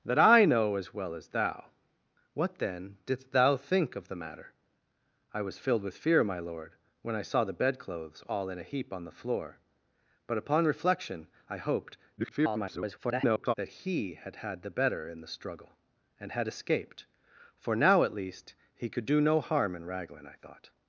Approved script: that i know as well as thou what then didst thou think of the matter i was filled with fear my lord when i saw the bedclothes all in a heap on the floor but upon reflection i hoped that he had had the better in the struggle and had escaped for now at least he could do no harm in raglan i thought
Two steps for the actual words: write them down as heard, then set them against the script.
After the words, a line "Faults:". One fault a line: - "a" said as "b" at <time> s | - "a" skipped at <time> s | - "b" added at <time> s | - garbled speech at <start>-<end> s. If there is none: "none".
that i know as well as thou what then didst thou think of the matter i was filled with fear my lord when i saw the bedclothes all in a heap on the floor but upon reflection i hoped [garbled] that he had had the better in the struggle and had escaped for now at least he could do no harm in raglan i thought
Faults:
- garbled speech at 12.2-13.5 s